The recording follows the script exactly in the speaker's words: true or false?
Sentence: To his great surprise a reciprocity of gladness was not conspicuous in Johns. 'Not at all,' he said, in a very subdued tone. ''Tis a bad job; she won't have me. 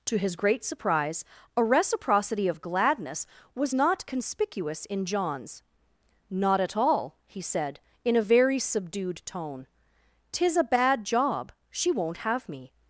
true